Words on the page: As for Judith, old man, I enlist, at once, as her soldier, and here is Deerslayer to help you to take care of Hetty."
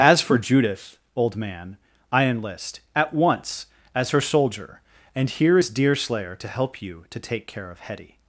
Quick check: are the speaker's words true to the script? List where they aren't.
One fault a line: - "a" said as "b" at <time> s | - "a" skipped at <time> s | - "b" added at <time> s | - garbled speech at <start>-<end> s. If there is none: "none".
none